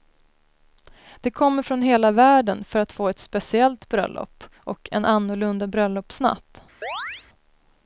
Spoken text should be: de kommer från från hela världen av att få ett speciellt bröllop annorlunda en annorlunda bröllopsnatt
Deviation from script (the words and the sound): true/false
true